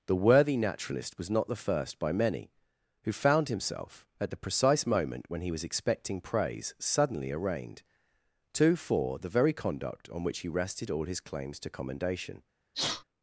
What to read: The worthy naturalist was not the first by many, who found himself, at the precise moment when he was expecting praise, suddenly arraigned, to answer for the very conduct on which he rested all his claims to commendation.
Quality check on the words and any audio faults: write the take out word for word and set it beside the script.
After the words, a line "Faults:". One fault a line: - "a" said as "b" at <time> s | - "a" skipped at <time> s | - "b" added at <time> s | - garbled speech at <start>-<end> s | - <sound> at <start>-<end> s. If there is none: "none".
The worthy naturalist was not the first by many, who found himself, at the precise moment when he was expecting praise, suddenly arraigned, to for the very conduct on which he rested all his claims to commendation.
Faults:
- "answer" skipped at 8.8 s
- sneeze at 12.7-13.0 s